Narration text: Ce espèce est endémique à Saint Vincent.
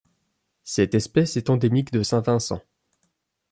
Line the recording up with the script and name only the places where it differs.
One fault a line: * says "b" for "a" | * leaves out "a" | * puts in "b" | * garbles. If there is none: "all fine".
* says "Cette" for "Ce"
* says "de" for "à"